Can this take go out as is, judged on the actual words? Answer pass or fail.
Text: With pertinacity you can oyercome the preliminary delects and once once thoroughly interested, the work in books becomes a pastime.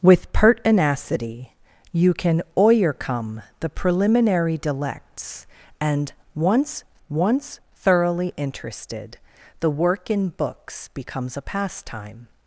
pass